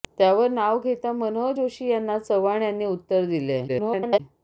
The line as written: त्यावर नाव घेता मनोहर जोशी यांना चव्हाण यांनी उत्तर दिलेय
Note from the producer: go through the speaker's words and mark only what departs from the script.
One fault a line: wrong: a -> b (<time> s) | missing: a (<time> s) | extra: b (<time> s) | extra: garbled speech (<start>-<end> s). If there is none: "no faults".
extra: garbled speech (3.7-4.2 s)